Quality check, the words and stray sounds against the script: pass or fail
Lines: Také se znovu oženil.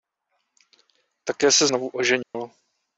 fail